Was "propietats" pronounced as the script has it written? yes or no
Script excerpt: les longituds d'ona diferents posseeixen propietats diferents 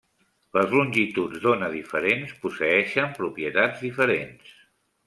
yes